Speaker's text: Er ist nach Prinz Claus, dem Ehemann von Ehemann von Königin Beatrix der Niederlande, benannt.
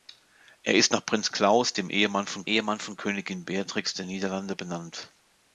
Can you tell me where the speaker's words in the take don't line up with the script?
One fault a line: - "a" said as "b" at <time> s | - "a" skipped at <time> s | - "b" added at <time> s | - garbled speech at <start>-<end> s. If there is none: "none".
none